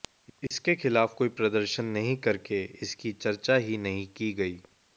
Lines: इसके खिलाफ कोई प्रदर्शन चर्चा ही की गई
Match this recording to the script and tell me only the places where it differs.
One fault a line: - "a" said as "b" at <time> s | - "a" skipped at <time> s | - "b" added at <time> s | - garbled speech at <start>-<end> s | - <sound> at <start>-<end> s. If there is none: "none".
- dropout at 0.5-0.5 s
- "नहीं करके इसकी" added at 1.9 s
- "नहीं" added at 3.8 s